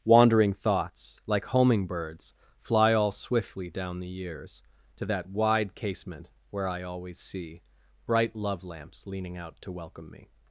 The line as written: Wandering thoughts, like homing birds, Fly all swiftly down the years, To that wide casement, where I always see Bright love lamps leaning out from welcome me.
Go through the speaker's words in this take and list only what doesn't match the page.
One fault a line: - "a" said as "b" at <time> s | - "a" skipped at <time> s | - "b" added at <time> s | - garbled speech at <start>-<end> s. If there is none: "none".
- "from" said as "to" at 9.6 s